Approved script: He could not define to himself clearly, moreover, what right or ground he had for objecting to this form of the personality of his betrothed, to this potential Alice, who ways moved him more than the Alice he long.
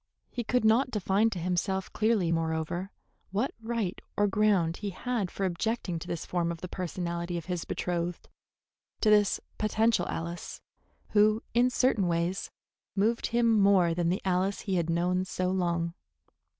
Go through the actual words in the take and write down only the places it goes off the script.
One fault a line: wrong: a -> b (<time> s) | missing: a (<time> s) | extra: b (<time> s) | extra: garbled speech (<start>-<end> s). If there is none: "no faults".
extra: in certain (11.5 s)
extra: had known so (14.8 s)